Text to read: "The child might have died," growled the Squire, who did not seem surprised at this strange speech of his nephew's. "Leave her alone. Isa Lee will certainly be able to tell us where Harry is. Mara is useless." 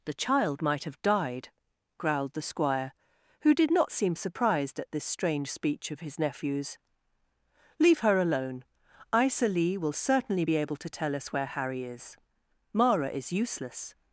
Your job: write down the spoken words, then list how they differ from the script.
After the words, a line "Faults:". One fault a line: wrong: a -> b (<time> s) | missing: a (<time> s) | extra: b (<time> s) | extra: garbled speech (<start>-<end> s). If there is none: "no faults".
"The child might have died," growled the Squire, who did not seem surprised at this strange speech of his nephew's. "Leave her alone. Isa Lee will certainly be able to tell us where Harry is. Mara is useless."
Faults:
no faults